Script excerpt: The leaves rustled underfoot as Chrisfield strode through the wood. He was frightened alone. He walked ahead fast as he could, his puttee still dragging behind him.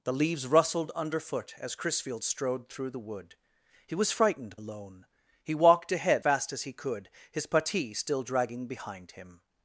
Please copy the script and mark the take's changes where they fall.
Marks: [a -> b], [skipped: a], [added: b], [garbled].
The leaves rustled underfoot as Chrisfield strode through the wood. He was frightened alone. He walked ahead fast as he could, his puttee still dragging behind him.